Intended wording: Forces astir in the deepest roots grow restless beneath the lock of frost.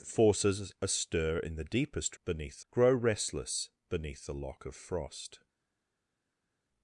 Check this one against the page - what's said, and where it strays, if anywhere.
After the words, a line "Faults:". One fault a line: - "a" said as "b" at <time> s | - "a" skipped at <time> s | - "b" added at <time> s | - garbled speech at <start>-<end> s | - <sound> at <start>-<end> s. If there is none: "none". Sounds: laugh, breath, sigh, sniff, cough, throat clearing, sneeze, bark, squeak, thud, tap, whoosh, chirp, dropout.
Forces astir in the deepest beneath grow restless beneath the lock of frost.
Faults:
- "roots" said as "beneath" at 2.2 s